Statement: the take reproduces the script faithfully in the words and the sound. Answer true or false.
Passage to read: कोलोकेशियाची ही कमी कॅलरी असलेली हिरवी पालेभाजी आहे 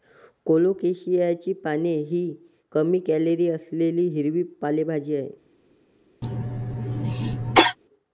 false